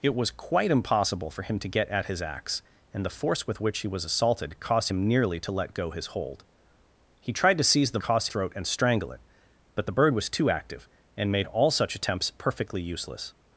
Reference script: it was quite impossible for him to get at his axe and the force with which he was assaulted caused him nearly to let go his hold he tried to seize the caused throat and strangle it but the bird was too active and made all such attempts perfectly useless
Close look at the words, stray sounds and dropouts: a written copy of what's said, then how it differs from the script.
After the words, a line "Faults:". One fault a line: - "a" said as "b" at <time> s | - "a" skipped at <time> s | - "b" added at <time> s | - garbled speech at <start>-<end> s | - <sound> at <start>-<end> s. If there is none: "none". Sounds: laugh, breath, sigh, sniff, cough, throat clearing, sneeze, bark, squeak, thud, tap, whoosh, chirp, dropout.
it was quite impossible for him to get at his axe and the force with which he was assaulted caused him nearly to let go his hold he tried to seize the caused throat and strangle it but the bird was too active and made all such attempts perfectly useless
Faults:
none